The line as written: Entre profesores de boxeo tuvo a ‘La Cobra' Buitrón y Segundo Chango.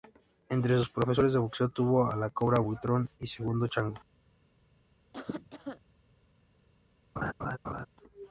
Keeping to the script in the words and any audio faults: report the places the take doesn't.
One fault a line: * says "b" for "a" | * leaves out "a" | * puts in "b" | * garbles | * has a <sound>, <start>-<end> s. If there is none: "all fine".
* puts in "sus"
* has a cough, 5.1-5.8 s
* has a laugh, 7.2-7.9 s